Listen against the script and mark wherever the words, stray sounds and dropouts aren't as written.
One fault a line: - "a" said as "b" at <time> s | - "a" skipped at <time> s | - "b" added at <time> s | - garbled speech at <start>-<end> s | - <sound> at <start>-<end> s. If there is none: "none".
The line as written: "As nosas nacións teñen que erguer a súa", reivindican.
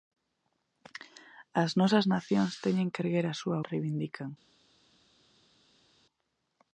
none